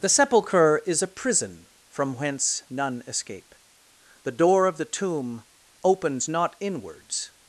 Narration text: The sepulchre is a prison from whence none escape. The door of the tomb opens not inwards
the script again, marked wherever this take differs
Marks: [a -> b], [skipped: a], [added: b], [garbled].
The sepulchre is a prison from whence none escape. The door of the tomb opens not inwards